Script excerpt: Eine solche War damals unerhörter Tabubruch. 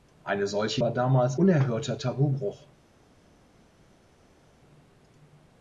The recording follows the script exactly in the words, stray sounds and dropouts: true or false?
true